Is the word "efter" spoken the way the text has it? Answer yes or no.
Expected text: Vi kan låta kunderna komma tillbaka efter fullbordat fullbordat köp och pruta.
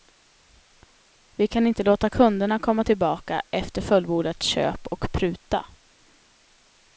yes